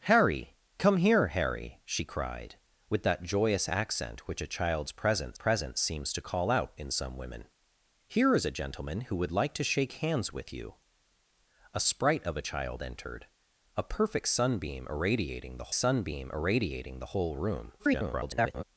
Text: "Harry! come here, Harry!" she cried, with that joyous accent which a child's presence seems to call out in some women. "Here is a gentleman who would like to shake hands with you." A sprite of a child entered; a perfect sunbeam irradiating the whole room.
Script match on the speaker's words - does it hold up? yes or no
no